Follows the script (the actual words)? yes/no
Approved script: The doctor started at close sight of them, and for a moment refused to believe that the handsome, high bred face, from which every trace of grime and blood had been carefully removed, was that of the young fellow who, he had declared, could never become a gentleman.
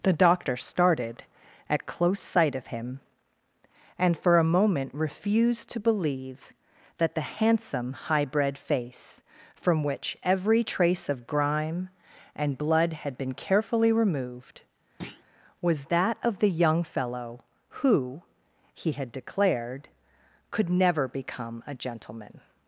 no